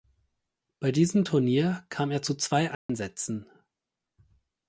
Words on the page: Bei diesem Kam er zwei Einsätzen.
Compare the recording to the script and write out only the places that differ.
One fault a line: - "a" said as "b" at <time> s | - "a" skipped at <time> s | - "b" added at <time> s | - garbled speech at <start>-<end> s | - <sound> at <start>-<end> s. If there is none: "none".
- "Turnier" added at 1.2 s
- "zu" added at 2.2 s
- dropout at 2.7-2.9 s